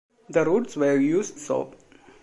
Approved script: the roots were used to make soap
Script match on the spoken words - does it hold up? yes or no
no